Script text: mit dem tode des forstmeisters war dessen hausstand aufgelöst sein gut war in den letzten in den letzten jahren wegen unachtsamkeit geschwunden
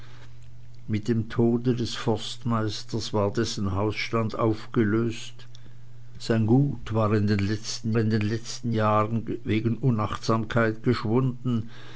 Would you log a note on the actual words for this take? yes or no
no